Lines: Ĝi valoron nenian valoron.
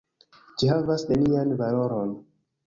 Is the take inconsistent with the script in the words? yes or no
yes